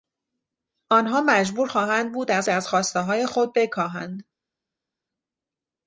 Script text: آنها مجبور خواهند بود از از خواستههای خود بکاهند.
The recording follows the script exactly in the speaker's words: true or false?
true